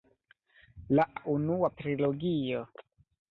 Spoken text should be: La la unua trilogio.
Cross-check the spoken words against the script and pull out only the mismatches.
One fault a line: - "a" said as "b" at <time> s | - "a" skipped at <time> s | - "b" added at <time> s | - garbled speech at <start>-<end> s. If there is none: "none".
none